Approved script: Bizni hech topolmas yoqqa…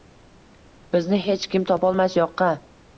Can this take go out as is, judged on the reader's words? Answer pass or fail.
fail